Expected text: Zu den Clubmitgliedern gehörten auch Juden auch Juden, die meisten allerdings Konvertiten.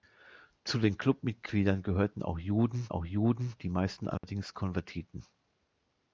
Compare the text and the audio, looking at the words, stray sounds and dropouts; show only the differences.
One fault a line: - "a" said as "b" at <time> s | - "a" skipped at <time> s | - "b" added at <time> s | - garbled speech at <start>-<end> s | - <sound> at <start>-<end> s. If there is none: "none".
- dropout at 4.2-4.2 s